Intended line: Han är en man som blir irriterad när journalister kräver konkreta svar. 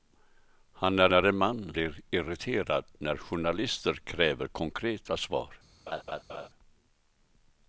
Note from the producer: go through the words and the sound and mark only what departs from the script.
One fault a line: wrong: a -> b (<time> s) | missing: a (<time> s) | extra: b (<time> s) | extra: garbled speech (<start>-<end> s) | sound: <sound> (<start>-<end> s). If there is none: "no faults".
extra: är (1.1 s)
missing: som (1.7 s)
sound: laugh (5.9-6.5 s)